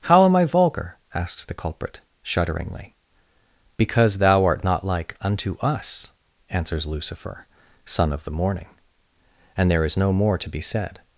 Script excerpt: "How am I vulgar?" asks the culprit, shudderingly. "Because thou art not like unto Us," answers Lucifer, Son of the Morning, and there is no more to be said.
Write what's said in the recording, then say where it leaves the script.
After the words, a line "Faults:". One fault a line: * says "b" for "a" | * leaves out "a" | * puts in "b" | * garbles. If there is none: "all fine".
"How am I vulgar?" asks the culprit, shudderingly. "Because thou art not like unto Us," answers Lucifer, Son of the Morning, and there is no more to be said.
Faults:
all fine